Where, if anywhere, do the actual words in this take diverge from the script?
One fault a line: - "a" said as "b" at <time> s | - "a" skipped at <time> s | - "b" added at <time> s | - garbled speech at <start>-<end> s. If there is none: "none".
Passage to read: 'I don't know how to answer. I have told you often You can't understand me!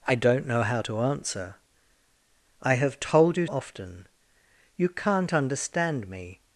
none